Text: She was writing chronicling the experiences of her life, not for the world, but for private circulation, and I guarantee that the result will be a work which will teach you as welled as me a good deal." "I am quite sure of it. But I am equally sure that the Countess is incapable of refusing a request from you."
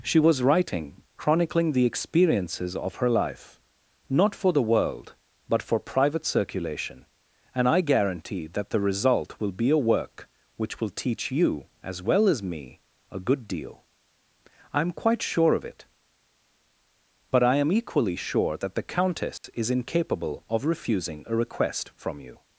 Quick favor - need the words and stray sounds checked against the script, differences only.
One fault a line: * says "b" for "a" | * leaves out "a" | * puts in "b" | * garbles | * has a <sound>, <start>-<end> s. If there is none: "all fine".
* says "well" for "welled"
* has a dropout, 19.4-19.4 s